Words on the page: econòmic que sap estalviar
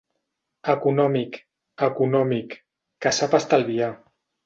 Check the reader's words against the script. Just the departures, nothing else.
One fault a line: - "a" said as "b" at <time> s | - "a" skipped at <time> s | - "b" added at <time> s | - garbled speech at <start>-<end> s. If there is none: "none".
- "econòmic" added at 1.9 s